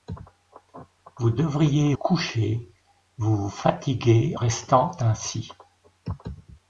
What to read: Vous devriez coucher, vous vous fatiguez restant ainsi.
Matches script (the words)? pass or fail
pass